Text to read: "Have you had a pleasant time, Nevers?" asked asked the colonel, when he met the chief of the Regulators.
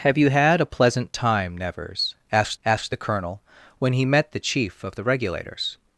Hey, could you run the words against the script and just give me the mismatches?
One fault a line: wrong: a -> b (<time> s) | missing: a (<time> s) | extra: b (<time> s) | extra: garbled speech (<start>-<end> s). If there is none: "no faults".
no faults